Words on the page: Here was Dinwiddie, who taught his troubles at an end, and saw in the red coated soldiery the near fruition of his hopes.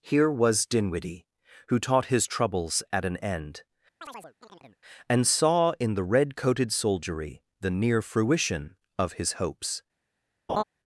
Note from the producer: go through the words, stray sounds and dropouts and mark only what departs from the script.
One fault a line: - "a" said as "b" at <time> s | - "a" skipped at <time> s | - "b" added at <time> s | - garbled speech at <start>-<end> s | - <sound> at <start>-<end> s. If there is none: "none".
- chirp at 4.0-4.8 s
- laugh at 10.5-10.6 s